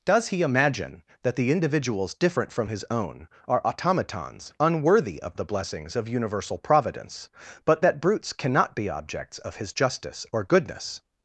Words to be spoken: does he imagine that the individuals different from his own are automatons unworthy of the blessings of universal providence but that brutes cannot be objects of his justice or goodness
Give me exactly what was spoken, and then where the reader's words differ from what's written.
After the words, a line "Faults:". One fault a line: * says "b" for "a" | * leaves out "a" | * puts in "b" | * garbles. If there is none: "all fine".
does he imagine that the individuals different from his own are automatons unworthy of the blessings of universal providence but that brutes cannot be objects of his justice or goodness
Faults:
all fine